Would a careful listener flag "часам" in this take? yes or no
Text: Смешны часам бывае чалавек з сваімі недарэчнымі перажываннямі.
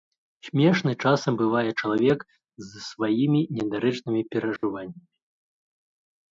no